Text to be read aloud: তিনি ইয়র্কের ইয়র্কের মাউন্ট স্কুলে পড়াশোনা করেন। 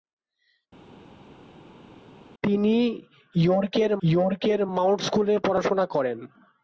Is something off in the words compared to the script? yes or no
no